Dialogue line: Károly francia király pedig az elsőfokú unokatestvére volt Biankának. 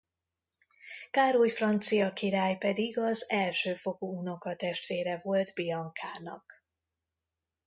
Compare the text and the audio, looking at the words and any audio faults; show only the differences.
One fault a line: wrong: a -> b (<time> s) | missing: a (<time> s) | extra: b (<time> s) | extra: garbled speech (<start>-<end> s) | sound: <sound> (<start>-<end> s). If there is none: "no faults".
no faults